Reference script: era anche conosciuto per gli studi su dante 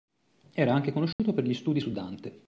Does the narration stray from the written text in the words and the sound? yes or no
yes